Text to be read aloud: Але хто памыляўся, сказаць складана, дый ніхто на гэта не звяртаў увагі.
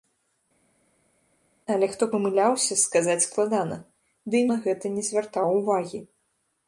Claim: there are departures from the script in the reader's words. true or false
true